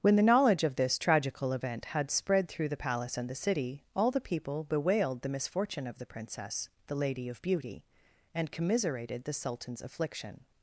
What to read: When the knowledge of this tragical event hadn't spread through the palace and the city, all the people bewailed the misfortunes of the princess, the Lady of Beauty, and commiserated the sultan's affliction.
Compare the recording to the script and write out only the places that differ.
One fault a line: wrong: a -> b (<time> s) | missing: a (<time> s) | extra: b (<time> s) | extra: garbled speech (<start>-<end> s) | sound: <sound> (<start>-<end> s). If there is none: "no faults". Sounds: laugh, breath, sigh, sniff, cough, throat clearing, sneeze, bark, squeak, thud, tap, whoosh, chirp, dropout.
wrong: hadn't -> had (1.9 s)
wrong: misfortunes -> misfortune (5.3 s)